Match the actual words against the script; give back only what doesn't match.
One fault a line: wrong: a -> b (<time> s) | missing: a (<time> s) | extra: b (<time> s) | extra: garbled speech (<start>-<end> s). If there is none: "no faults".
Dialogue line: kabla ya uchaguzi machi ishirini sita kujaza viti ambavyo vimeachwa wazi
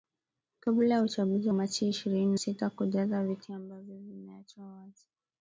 no faults